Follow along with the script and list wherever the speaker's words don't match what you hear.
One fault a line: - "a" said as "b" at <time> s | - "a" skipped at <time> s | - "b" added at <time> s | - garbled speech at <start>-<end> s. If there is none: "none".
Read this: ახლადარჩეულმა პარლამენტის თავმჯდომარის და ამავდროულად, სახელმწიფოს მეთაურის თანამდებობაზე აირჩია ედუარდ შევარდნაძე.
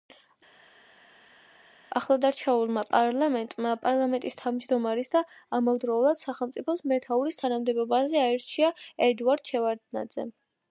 - "პარლამენტმა" added at 2.9 s